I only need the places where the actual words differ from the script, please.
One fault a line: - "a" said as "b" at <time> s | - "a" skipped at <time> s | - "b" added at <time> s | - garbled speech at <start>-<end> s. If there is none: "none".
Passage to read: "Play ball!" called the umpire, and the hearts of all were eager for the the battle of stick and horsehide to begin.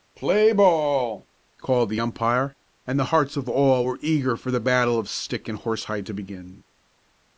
- "the" skipped at 4.6 s